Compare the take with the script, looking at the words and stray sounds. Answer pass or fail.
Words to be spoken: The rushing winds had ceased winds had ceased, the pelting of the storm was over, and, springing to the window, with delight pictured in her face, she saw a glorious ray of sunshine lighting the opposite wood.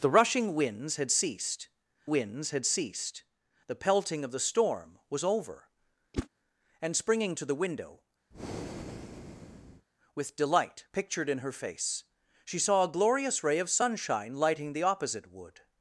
fail